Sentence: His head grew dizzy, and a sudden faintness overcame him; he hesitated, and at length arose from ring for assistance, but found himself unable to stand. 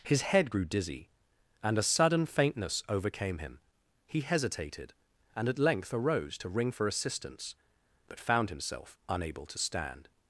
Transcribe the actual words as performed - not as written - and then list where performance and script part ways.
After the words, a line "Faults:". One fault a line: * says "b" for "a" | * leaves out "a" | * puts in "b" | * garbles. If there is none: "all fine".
His head grew dizzy, and a sudden faintness overcame him; he hesitated, and at length arose to ring for assistance, but found himself unable to stand.
Faults:
* says "to" for "from"